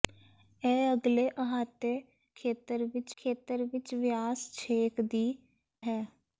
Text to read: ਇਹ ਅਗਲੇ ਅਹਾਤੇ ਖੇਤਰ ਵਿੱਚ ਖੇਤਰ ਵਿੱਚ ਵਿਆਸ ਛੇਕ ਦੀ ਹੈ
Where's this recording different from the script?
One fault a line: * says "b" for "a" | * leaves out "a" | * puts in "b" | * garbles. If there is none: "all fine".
all fine